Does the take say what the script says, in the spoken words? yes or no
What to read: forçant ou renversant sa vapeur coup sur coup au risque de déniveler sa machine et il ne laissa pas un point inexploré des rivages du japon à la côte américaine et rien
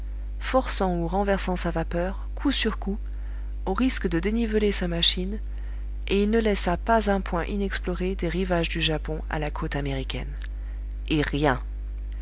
yes